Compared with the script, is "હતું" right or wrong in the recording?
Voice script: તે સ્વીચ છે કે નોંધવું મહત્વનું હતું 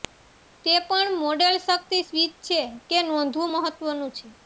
wrong